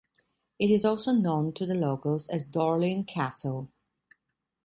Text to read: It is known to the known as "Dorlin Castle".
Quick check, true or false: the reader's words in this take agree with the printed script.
false